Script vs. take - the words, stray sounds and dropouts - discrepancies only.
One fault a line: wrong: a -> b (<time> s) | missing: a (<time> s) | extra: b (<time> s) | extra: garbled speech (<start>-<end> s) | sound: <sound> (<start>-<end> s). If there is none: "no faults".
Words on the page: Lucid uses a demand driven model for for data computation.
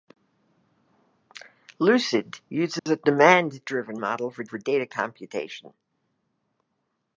sound: dropout (2.8-2.9 s)